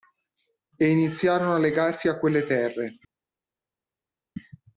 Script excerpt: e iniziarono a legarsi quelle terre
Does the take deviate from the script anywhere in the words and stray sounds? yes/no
yes